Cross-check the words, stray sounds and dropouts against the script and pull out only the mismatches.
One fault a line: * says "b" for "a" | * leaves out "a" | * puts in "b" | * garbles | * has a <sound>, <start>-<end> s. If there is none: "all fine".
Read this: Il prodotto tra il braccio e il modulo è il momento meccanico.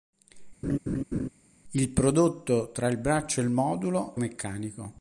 * has a laugh, 0.6-1.3 s
* leaves out "è il momento"